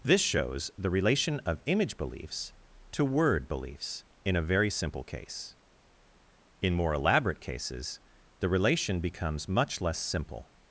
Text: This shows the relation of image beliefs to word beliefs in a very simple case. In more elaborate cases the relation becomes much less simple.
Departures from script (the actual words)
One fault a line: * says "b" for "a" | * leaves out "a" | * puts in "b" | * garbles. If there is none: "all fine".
all fine